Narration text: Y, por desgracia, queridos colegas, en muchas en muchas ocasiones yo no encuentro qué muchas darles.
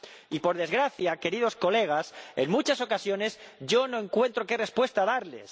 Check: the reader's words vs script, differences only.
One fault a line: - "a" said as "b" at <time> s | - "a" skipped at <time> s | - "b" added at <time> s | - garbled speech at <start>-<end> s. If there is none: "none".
- "en muchas" skipped at 2.8 s
- "muchas" said as "respuesta" at 4.6 s